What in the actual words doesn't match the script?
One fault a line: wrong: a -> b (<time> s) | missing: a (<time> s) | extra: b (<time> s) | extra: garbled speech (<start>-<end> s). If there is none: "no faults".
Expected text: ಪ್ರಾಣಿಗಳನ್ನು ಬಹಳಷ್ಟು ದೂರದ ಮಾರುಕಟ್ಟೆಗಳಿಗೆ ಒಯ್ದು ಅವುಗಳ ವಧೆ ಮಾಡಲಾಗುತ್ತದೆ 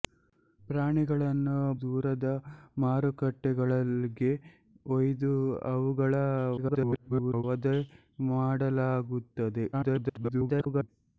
missing: ಬಹಳಷ್ಟು (1.5 s)
extra: garbled speech (6.6-7.4 s)
extra: garbled speech (9.7-10.9 s)